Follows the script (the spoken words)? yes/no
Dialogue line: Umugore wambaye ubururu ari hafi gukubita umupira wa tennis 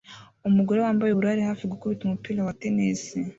yes